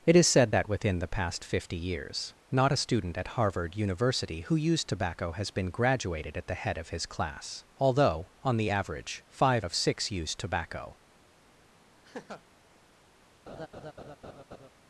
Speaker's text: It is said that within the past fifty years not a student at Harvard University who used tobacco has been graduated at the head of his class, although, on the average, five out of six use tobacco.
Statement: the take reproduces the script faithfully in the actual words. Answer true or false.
false